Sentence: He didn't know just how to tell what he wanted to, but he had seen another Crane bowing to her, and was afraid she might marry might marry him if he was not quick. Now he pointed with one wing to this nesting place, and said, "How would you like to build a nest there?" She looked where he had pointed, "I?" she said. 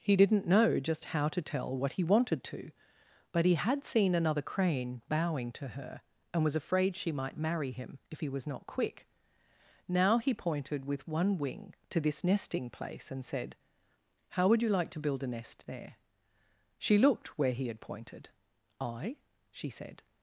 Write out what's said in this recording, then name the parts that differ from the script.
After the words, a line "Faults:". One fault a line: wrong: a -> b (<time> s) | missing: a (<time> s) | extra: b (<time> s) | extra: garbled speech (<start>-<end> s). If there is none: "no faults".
He didn't know just how to tell what he wanted to, but he had seen another Crane bowing to her, and was afraid she might marry him if he was not quick. Now he pointed with one wing to this nesting place, and said, "How would you like to build a nest there?" She looked where he had pointed, "I?" she said.
Faults:
missing: might marry (7.7 s)